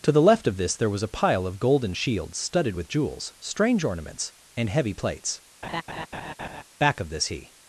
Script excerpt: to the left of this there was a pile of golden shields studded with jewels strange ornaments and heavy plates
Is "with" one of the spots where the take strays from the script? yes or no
no